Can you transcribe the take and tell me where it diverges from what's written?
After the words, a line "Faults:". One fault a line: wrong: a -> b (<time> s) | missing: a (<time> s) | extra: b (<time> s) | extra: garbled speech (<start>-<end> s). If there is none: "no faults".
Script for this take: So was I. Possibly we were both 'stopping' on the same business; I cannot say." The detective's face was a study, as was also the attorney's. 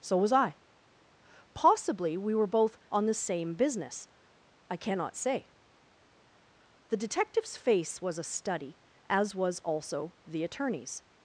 So was I. Possibly we were both' 'on the same business; I cannot say." The detective's face was a study, as was also the attorney's.
Faults:
missing: stopping (2.8 s)